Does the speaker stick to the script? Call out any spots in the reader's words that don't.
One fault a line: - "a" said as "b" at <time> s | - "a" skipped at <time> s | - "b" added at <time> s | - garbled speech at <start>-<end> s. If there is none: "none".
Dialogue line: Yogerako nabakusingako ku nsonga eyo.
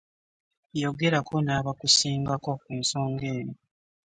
none